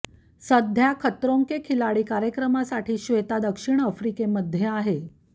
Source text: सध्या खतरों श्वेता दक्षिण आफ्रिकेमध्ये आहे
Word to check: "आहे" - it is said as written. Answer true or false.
true